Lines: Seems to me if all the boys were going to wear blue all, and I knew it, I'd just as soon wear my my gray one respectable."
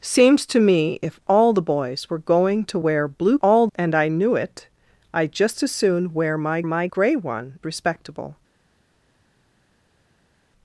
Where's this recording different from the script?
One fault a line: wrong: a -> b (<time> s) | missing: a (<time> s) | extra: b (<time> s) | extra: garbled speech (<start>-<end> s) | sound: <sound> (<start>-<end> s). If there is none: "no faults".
no faults